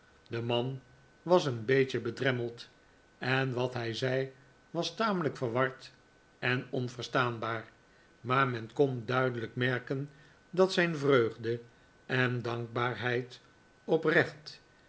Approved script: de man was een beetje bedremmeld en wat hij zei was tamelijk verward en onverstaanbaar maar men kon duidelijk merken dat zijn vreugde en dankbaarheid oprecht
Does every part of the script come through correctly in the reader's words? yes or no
yes